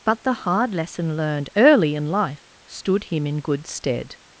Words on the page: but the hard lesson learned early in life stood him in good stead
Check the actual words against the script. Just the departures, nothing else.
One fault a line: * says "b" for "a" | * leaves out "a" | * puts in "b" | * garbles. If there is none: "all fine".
all fine